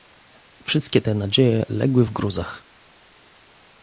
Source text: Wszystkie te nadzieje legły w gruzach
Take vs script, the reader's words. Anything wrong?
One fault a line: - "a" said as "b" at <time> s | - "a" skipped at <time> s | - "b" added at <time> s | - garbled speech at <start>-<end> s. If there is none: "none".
none